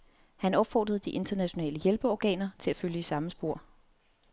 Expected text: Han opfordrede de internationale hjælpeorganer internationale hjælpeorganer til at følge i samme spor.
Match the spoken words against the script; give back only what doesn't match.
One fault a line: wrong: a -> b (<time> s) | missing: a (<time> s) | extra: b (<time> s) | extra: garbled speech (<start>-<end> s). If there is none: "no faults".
missing: internationale hjælpeorganer (2.5 s)